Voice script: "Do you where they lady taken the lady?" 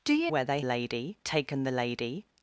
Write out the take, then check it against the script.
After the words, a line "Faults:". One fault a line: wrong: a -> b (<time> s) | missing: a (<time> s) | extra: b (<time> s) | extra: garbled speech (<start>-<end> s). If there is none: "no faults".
"Do you where they lady taken the lady?"
Faults:
no faults